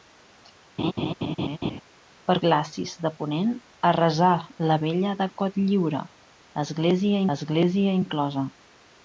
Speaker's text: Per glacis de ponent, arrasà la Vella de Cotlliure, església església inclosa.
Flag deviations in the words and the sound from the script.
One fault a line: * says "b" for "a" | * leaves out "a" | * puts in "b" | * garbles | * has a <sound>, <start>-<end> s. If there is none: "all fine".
* has a laugh, 0.8-1.8 s